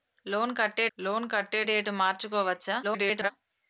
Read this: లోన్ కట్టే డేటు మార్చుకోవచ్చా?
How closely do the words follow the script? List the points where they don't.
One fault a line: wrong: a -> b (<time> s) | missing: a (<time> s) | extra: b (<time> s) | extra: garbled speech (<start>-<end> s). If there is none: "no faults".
extra: లోన్ కట్టే (1.0 s)
extra: garbled speech (2.8-3.3 s)